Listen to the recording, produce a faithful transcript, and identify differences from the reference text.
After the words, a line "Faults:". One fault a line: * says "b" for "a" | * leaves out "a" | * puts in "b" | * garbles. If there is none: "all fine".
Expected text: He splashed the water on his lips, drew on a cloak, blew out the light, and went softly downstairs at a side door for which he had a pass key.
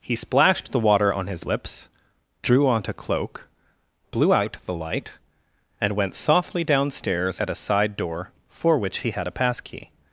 He splashed the water on his lips, drew on a cloak, blew out the light, and went softly downstairs at a side door for which he had a pass key.
Faults:
all fine